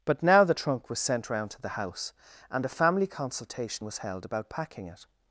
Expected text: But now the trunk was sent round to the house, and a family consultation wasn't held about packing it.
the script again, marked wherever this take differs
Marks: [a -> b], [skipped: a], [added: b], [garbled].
But now the trunk was sent round to the house, and a family consultation [wasn't -> was] held about packing it.